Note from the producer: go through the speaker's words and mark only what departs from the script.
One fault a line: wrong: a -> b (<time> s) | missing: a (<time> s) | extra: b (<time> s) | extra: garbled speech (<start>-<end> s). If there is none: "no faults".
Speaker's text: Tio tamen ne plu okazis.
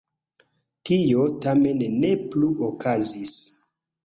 no faults